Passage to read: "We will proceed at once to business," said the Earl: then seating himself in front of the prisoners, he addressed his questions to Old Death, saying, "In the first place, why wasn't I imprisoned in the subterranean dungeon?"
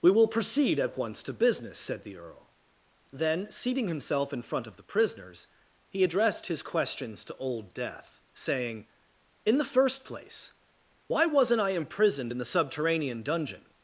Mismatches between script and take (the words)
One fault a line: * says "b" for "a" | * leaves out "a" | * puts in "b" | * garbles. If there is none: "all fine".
all fine